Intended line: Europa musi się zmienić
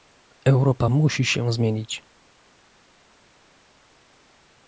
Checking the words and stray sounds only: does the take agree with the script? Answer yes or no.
yes